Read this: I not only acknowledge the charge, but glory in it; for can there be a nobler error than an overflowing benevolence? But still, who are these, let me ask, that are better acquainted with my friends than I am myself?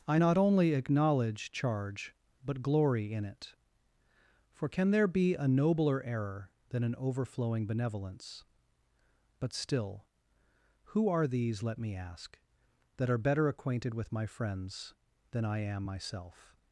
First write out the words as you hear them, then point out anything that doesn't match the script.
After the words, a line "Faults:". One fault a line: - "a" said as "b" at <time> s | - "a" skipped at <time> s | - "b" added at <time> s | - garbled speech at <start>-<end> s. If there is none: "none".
I not only acknowledge charge, but glory in it; for can there be a nobler error than an overflowing benevolence? But still, who are these, let me ask, that are better acquainted with my friends than I am myself?
Faults:
- "the" skipped at 1.5 s